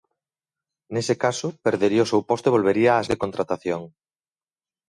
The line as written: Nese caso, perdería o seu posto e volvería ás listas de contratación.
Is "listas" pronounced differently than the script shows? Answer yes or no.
yes